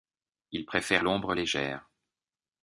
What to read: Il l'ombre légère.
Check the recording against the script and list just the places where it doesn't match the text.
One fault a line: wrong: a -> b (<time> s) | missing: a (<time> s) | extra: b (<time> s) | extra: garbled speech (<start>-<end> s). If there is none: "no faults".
extra: préfère (0.7 s)